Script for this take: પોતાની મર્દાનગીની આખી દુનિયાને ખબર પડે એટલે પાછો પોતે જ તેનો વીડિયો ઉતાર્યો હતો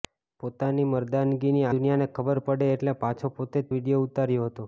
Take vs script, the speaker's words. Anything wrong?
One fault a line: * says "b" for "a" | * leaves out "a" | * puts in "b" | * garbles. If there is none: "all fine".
* leaves out "આખી"
* leaves out "તેનો"